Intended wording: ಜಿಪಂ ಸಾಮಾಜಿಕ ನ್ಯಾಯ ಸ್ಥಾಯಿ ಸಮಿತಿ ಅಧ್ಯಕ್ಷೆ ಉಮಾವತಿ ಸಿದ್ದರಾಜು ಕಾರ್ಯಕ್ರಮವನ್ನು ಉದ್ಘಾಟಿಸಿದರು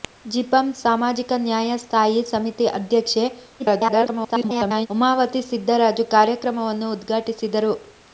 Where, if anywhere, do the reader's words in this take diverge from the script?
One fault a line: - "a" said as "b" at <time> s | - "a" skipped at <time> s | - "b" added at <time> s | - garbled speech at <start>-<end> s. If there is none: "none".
- garbled speech at 3.6-4.9 s